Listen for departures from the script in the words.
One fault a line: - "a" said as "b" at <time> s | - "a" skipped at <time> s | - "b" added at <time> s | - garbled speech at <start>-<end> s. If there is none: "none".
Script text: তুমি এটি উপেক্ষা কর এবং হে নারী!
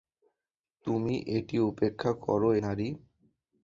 - "এবং হে" skipped at 2.4 s